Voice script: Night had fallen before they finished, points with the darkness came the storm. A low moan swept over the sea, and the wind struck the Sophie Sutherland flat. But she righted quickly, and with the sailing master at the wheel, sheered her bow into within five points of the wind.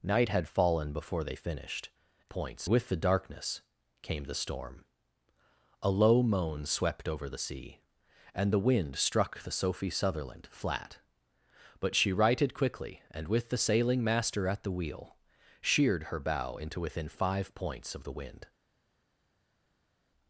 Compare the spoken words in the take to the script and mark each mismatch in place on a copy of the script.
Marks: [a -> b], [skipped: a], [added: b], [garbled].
Night had fallen before they finished, points with the darkness came the storm. A low moan swept over the sea, and the wind struck the Sophie Sutherland flat. But she righted quickly, and with the sailing master at the wheel, sheered her bow into within five points of the wind.